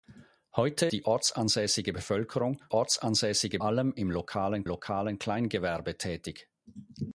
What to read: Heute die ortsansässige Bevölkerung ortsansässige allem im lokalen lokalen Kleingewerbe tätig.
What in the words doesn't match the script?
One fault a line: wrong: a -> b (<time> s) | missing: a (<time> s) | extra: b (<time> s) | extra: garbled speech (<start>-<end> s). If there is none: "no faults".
no faults